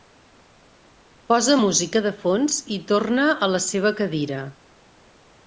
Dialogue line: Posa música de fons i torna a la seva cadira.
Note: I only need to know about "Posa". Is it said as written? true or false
true